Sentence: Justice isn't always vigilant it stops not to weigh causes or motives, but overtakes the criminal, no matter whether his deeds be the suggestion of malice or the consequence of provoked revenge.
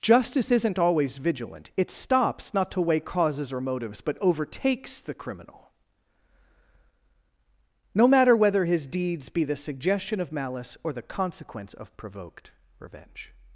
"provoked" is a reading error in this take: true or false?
false